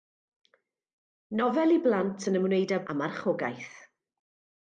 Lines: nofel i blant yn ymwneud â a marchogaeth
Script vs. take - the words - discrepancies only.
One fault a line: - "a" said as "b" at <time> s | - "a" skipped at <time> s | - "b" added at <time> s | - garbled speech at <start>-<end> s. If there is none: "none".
none